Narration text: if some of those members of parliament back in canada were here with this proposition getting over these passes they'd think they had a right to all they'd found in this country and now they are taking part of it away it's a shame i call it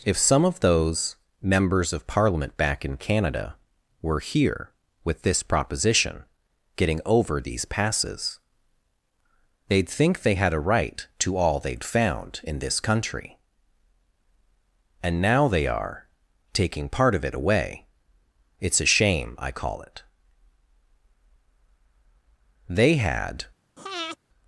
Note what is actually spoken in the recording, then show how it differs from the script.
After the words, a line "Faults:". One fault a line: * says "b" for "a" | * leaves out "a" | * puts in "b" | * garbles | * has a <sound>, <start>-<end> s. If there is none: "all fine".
if some of those members of parliament back in canada were here with this proposition getting over these passes they'd think they had a right to all they'd found in this country and now they are taking part of it away it's a shame i call it they had
Faults:
* puts in "they had"
* has a breath, 23.8-24.2 s